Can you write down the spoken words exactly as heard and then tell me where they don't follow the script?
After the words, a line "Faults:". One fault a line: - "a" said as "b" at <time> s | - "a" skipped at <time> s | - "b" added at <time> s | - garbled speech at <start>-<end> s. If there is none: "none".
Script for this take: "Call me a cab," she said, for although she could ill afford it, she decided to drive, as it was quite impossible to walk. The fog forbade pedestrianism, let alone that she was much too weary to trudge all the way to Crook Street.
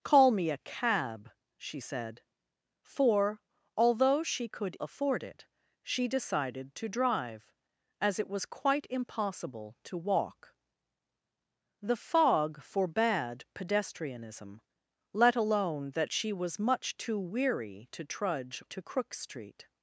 "Call me a cab," she said, for although she could afford it, she decided to drive, as it was quite impossible to walk. The fog forbade pedestrianism, let alone that she was much too weary to trudge to Crook Street.
Faults:
- "ill" skipped at 4.8 s
- "all the way" skipped at 18.6 s